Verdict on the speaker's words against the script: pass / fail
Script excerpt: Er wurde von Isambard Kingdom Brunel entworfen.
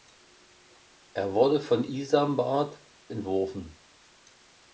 fail